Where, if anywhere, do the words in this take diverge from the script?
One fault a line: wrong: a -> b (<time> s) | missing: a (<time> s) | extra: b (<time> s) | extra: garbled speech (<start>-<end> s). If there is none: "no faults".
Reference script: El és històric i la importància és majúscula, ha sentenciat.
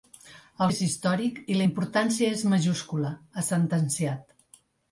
no faults